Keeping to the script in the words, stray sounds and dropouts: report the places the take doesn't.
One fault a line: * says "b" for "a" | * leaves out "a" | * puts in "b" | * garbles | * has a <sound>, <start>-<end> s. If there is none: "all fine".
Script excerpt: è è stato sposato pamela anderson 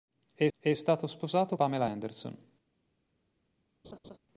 * has a laugh, 3.8-4.2 s